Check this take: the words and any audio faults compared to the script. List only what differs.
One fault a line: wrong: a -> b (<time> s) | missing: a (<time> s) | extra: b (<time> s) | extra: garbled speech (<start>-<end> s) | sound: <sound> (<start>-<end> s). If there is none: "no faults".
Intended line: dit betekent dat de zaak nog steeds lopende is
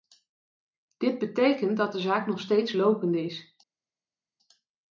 no faults